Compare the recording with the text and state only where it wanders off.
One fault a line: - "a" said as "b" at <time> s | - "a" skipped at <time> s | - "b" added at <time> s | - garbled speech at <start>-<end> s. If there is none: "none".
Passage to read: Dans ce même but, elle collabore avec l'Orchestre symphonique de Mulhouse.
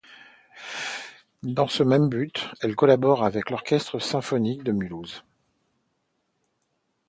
none